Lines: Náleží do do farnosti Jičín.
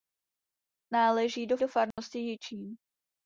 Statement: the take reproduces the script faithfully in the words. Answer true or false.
true